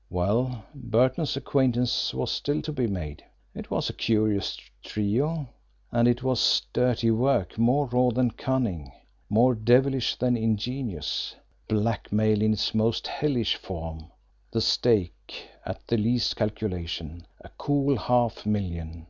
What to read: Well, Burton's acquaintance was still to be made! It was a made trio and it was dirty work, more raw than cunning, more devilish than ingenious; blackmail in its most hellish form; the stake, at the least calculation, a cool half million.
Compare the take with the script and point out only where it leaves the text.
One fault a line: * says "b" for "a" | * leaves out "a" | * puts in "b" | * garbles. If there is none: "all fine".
* says "curious" for "made"